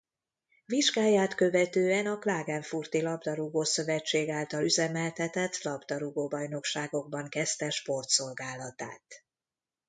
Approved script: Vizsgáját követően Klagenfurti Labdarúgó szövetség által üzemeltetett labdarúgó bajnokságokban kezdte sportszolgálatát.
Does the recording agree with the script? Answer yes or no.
no